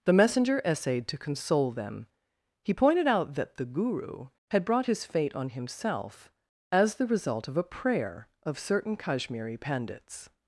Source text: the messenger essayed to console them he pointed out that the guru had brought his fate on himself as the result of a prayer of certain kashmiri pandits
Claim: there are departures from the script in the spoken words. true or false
false